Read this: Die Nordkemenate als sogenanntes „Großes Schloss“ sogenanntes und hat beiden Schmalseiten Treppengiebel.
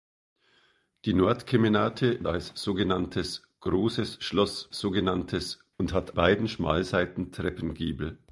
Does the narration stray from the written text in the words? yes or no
no